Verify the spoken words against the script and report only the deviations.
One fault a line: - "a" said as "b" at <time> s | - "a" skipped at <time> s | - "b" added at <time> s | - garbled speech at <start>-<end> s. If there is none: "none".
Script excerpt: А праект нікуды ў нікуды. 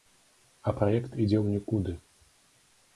- "нікуды" said as "ідзе" at 1.2 s